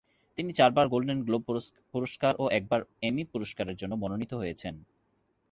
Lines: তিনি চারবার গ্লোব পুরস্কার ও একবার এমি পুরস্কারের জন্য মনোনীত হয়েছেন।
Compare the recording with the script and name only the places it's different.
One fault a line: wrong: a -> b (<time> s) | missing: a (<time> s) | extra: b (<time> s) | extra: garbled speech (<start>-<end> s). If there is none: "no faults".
extra: গোল্ডেন (0.9 s)